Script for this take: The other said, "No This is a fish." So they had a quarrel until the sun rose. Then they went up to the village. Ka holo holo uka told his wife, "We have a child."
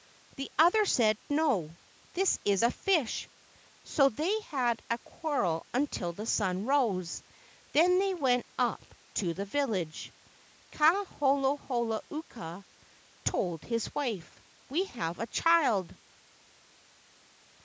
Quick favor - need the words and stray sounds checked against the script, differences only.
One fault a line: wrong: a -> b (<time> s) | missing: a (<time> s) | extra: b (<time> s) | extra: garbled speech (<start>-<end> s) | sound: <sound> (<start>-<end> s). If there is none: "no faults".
no faults